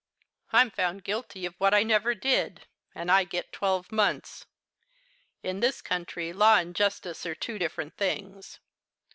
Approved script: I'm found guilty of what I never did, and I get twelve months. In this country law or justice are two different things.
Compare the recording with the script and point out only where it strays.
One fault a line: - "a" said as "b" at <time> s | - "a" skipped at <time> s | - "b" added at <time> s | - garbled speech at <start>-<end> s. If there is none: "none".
- "or" said as "and" at 6.5 s